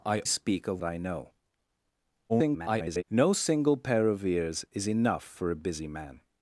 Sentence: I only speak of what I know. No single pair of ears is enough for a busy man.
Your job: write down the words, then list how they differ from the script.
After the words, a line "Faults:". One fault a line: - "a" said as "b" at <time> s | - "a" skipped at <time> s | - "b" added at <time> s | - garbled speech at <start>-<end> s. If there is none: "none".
I speak of I know. [garbled] No single pair of ears is enough for a busy man.
Faults:
- "only" skipped at 0.2 s
- "what" skipped at 0.8 s
- garbled speech at 2.3-3.0 s